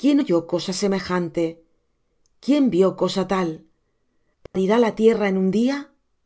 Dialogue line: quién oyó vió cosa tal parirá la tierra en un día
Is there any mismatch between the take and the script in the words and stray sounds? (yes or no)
yes